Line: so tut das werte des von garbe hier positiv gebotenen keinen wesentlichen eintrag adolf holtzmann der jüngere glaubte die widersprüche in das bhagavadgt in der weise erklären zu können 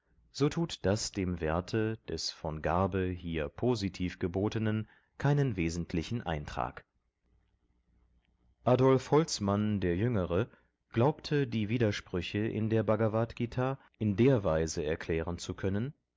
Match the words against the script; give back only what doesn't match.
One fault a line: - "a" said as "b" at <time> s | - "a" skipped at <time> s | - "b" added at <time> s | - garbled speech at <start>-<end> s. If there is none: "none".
- "dem" added at 1.1 s
- "das" said as "der" at 12.7 s